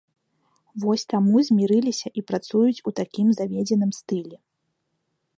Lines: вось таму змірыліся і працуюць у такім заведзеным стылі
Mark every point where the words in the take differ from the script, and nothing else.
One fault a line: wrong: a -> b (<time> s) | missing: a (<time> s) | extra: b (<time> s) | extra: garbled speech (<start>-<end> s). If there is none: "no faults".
no faults